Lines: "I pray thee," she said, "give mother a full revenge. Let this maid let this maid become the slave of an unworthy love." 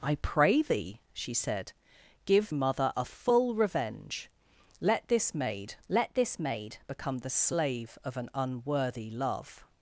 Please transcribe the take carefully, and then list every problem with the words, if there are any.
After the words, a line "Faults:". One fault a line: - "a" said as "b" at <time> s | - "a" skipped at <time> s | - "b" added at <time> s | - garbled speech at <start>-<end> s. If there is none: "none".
"I pray thee," she said, "give mother a full revenge. Let this maid let this maid become the slave of an unworthy love."
Faults:
none